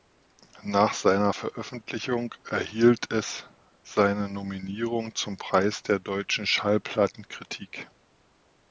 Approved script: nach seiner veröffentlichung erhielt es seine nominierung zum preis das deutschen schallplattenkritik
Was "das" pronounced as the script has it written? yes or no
no